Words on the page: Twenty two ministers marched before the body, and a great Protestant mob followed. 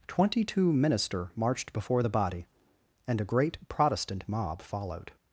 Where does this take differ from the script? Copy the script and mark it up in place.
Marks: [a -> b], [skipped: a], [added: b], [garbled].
Twenty two [ministers -> minister] marched before the body, and a great Protestant mob followed.